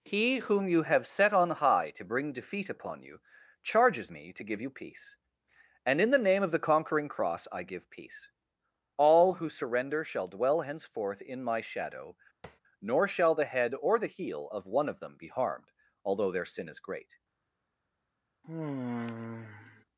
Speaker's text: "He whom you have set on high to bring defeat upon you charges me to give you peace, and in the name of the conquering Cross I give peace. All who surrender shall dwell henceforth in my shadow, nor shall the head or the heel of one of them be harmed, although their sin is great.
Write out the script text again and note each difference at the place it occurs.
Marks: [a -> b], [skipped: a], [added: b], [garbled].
"He whom you have set on high to bring defeat upon you charges me to give you peace, and in the name of the conquering Cross I give peace. All who surrender shall dwell henceforth in my shadow, nor shall the head or the heel of one of them be harmed, although their sin is great.